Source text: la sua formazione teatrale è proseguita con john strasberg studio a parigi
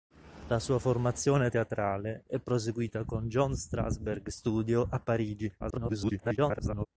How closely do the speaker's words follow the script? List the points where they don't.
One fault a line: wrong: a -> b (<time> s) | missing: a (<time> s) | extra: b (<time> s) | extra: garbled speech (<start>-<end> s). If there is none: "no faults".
extra: garbled speech (5.6-6.9 s)